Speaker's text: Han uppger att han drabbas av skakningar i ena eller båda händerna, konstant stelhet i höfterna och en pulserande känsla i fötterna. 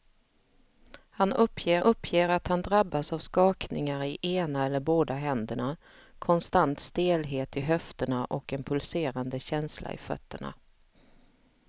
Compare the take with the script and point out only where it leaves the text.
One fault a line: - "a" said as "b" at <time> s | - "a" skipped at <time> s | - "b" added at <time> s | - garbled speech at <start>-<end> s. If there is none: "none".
- "uppger" added at 1.8 s